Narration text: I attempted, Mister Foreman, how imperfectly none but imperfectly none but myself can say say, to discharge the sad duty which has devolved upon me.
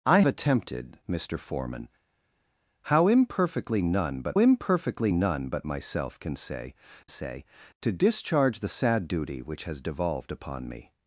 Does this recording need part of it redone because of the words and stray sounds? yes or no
no